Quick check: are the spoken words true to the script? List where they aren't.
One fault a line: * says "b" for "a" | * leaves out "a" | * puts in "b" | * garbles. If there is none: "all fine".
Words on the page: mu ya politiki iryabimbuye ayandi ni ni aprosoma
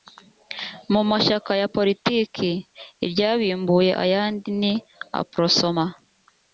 * puts in "mashyaka"
* leaves out "ni"